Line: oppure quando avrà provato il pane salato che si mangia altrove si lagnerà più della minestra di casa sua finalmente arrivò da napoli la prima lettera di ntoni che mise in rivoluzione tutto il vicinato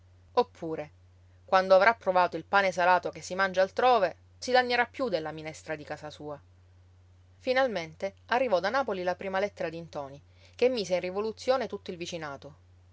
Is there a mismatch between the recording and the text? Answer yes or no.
no